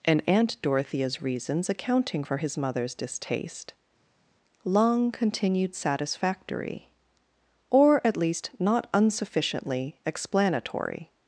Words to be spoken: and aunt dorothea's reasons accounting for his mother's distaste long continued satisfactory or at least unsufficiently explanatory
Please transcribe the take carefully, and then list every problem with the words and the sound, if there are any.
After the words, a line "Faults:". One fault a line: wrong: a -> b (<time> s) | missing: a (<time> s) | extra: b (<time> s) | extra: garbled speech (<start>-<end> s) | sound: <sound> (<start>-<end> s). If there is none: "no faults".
and aunt dorothea's reasons accounting for his mother's distaste long continued satisfactory or at least not unsufficiently explanatory
Faults:
extra: not (8.6 s)